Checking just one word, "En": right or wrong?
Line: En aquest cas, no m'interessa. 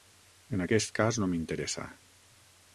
right